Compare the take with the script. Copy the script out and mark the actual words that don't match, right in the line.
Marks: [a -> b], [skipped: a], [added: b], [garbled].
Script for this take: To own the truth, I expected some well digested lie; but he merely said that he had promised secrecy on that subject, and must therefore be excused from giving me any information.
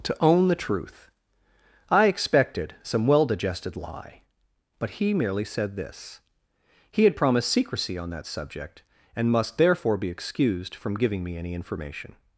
To own the truth, I expected some well digested lie; but he merely said [that -> this] he had promised secrecy on that subject, and must therefore be excused from giving me any information.